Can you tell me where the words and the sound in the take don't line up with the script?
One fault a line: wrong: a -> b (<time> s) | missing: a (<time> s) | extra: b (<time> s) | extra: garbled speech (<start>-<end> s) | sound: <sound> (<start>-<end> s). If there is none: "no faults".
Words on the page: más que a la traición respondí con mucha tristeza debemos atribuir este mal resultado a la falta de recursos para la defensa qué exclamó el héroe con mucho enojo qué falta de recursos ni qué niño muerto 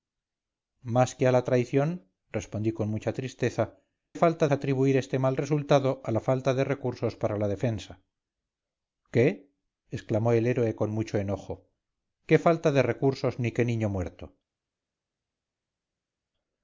wrong: debemos -> falta (4.1 s)